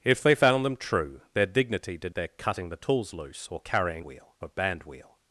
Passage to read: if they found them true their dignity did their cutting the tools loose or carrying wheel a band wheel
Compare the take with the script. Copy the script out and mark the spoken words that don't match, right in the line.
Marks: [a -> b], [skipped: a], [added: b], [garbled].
if they found them true their dignity did their cutting the tools loose or carrying wheel a band wheel